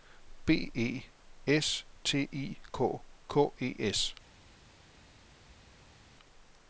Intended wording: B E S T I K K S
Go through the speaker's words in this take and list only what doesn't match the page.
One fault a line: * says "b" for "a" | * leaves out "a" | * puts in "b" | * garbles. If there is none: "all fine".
* puts in "E"